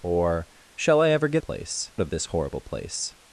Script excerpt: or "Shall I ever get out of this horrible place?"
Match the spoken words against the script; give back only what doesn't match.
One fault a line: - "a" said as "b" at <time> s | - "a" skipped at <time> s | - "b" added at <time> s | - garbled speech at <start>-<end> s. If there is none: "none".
- "out" said as "place" at 1.4 s